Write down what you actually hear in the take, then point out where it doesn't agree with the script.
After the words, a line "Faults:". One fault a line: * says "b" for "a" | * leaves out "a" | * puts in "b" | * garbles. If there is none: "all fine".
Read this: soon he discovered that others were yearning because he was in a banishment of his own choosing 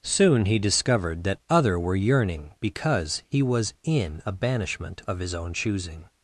soon he discovered that other were yearning because he was in a banishment of his own choosing
Faults:
* says "other" for "others"